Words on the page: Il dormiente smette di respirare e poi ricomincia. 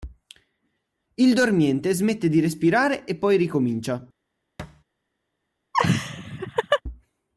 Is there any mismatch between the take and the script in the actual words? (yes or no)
no